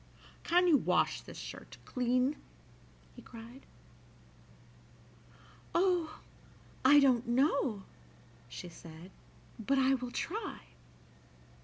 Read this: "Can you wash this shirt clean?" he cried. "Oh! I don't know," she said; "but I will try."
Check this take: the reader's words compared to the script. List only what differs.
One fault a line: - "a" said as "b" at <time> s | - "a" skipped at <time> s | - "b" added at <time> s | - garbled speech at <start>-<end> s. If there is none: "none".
none